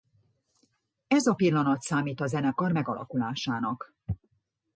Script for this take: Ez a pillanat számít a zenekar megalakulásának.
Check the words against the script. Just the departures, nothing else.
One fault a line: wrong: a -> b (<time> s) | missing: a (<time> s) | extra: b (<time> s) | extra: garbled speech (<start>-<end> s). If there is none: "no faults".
no faults